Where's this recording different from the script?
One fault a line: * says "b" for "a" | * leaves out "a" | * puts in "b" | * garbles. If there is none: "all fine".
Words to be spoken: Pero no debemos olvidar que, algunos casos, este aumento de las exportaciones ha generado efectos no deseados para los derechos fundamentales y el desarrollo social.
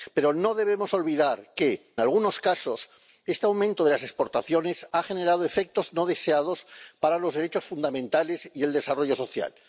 all fine